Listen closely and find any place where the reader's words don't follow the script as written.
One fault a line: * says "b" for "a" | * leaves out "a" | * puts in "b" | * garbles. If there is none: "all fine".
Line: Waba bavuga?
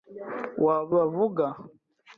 all fine